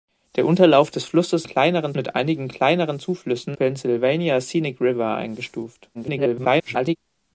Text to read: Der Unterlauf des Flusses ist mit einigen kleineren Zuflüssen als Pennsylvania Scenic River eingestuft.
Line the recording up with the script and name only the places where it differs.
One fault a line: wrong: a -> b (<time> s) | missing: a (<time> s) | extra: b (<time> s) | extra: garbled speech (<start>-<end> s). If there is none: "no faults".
wrong: ist -> kleineren (1.4 s)
missing: als (3.6 s)
extra: garbled speech (5.9-7.0 s)